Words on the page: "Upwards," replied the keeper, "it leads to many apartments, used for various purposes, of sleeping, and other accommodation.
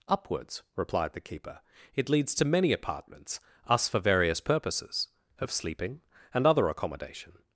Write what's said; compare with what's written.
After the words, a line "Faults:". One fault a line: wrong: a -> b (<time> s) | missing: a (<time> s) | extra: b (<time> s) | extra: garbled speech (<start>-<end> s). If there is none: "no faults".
"Upwards," replied the keeper, "it leads to many apartments, us for various purposes, of sleeping, and other accommodation.
Faults:
wrong: used -> us (3.7 s)